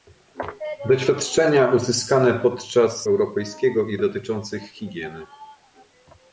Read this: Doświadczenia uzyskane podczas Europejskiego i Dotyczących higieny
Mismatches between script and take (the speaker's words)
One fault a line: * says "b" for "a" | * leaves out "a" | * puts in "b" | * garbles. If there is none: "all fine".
all fine